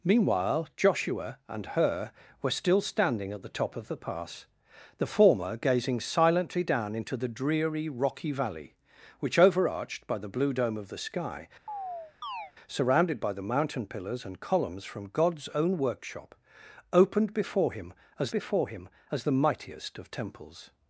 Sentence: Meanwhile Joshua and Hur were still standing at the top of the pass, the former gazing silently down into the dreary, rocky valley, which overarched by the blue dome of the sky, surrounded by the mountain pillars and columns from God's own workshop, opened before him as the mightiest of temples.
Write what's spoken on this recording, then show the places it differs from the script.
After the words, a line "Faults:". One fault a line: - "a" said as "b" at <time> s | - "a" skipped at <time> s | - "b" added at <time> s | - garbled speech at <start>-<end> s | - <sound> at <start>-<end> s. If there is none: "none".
Meanwhile Joshua and Hur were still standing at the top of the pass, the former gazing silently down into the dreary, rocky valley, which overarched by the blue dome of the sky, surrounded by the mountain pillars and columns from God's own workshop, opened before him as before him as the mightiest of temples.
Faults:
- chirp at 11.7-12.5 s
- "before him as" added at 18.3 s